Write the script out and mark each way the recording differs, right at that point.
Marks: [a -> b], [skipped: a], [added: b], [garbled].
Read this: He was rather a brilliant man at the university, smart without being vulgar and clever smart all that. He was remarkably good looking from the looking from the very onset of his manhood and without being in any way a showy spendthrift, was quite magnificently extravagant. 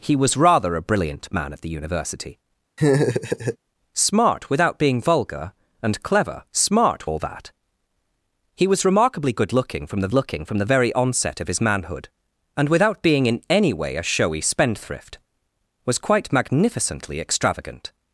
He was rather a brilliant man at the university, smart without being vulgar and clever smart all that. He was remarkably good looking from the looking from the very onset of his manhood and without being in any way a showy spendthrift, was quite magnificently extravagant.